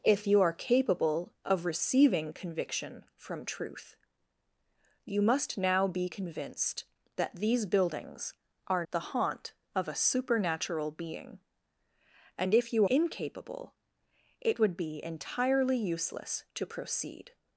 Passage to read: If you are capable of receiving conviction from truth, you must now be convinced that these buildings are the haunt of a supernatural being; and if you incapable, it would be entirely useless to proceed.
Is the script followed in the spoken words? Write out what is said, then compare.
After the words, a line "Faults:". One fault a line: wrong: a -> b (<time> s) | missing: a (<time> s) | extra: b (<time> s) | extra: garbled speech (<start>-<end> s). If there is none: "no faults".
If you are capable of receiving conviction from truth, you must now be convinced that these buildings are the haunt of a supernatural being; and if you incapable, it would be entirely useless to proceed.
Faults:
no faults